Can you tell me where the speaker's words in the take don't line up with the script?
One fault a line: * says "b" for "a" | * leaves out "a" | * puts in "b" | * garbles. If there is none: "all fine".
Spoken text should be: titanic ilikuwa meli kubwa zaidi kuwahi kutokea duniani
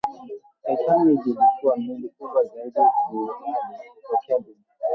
all fine